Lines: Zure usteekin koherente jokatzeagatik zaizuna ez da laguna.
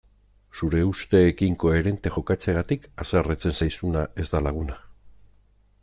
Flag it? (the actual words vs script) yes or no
yes